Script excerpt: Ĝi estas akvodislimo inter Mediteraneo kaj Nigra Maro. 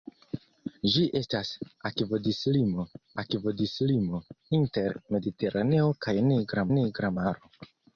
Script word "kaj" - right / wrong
right